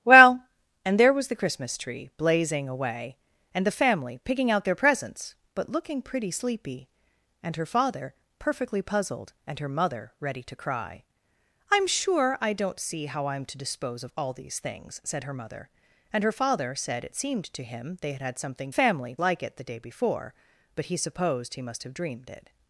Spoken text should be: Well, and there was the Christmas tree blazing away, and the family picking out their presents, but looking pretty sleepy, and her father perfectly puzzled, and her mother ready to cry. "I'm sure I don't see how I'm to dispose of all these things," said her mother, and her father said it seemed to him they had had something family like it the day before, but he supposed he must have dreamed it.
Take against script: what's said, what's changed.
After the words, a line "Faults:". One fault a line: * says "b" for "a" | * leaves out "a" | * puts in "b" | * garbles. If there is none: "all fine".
Well, and there was the Christmas tree blazing away, and the family picking out their presents, but looking pretty sleepy, and her father perfectly puzzled, and her mother ready to cry. "I'm sure I don't see how I'm to dispose of all these things," said her mother, and her father said it seemed to him they had had something family like it the day before, but he supposed he must have dreamed it.
Faults:
all fine